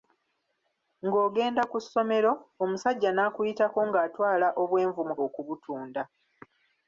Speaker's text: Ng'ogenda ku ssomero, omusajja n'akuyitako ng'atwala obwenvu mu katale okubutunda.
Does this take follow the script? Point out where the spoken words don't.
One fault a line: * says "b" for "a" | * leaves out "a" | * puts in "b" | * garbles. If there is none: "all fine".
* leaves out "katale"